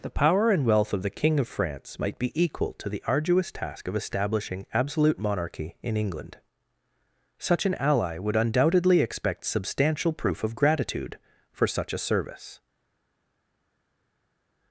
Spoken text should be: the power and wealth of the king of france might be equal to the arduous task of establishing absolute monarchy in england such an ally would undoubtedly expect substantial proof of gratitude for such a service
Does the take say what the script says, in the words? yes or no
yes